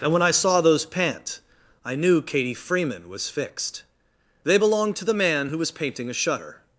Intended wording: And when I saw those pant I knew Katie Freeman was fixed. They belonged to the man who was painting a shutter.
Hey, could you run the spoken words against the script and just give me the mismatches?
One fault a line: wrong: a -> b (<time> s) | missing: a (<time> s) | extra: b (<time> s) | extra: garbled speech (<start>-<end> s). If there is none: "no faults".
no faults